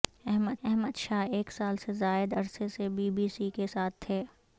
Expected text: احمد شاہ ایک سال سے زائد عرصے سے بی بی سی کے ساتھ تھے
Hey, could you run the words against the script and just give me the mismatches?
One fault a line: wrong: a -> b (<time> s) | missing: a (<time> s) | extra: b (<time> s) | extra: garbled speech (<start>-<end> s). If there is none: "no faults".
extra: احمد (0.6 s)